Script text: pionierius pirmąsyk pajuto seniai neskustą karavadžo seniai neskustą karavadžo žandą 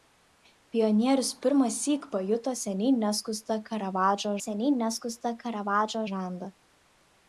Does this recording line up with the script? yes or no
yes